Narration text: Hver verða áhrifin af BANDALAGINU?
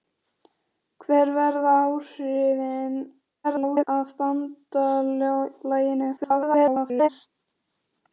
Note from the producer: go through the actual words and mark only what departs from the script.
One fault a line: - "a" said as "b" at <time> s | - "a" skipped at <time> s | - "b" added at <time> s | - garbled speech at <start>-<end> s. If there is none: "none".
- garbled speech at 3.4-3.9 s
- garbled speech at 6.2-7.1 s